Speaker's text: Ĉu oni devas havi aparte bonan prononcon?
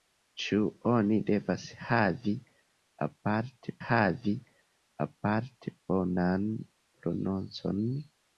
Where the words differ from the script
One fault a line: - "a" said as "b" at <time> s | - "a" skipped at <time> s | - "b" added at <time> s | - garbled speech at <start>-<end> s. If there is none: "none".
- "havi aparte" added at 3.9 s